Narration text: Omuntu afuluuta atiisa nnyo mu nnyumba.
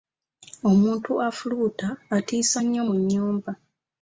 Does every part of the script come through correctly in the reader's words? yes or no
yes